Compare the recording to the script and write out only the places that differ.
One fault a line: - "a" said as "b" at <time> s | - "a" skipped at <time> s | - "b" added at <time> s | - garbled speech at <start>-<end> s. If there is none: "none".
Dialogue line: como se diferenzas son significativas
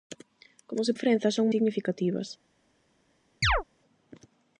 none